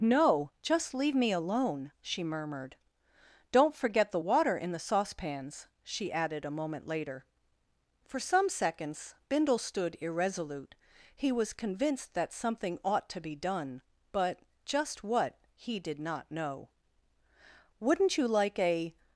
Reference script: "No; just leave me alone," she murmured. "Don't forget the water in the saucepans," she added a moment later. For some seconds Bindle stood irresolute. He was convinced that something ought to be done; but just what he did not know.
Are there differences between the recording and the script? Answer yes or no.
yes